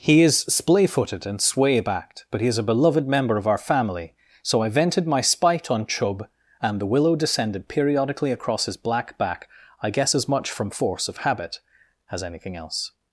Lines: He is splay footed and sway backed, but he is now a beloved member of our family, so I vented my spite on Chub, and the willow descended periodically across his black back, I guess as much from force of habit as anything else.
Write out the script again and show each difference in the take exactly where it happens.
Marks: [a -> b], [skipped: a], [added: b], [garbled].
He is splay footed and sway backed, but he is [skipped: now] a beloved member of our family, so I vented my spite on Chub, and the willow descended periodically across his black back, I guess as much from force of habit as anything else.